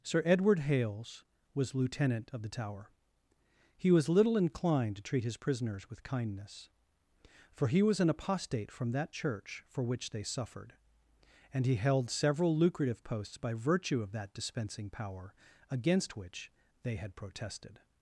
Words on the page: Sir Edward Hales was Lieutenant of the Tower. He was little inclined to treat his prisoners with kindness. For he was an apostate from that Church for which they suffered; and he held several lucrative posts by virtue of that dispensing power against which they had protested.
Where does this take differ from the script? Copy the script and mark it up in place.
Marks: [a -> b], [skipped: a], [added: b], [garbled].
Sir Edward Hales was Lieutenant of the Tower. He was little inclined to treat his prisoners with kindness. For he was an apostate from that Church for which they suffered; and he held several lucrative posts by virtue of that dispensing power against which they had protested.